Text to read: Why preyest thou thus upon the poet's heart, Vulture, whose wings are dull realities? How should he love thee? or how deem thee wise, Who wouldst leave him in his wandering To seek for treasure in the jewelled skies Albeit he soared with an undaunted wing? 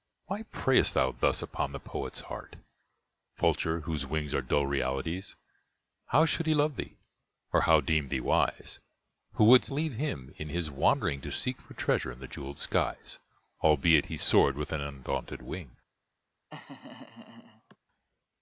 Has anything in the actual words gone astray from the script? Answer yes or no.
no